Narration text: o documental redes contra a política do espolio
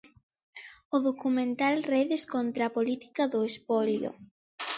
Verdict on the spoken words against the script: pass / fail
pass